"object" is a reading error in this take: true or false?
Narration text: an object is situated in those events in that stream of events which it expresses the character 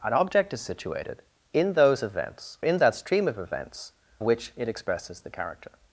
false